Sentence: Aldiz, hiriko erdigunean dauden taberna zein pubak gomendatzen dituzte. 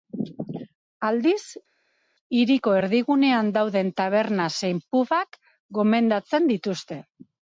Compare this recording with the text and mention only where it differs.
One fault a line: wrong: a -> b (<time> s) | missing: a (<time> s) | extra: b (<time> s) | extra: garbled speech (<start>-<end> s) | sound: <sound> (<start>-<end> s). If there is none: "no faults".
no faults